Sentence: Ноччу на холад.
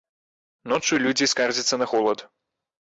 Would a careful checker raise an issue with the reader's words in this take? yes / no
yes